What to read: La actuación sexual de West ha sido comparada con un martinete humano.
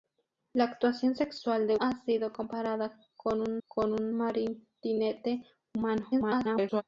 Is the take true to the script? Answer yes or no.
no